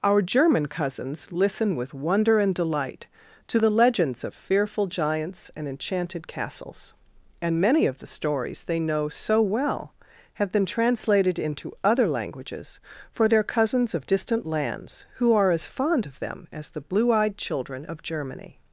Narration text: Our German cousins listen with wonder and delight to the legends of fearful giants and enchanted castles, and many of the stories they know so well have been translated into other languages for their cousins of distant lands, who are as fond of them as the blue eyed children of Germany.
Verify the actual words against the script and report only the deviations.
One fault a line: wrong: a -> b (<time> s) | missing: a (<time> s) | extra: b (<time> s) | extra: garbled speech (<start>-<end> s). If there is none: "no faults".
no faults